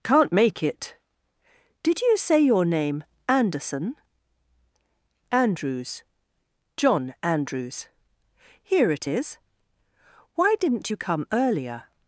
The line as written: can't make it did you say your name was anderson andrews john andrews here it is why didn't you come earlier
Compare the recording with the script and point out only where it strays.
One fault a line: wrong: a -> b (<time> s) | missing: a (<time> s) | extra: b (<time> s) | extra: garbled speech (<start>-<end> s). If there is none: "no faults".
missing: was (3.0 s)